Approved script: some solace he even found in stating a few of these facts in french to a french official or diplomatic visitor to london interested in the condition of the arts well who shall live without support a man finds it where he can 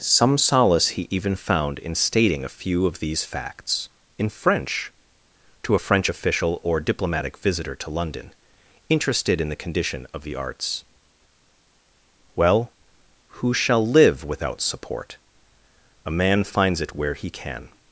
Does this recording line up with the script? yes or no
yes